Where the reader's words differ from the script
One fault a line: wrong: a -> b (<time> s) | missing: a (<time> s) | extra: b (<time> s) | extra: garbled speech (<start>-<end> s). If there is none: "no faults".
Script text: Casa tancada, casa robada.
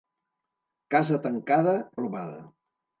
missing: casa (1.8 s)